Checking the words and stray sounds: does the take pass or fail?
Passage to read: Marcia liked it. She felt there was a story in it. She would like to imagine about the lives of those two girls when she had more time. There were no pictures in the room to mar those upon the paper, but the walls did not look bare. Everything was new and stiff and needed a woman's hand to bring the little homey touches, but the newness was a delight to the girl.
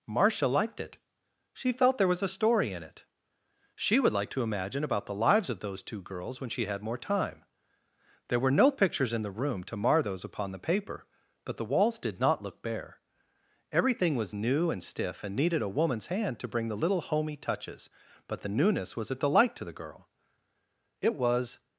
fail